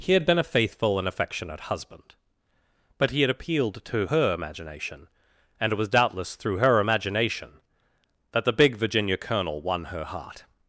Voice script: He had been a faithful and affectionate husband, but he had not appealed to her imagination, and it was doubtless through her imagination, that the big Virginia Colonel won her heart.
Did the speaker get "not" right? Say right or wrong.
wrong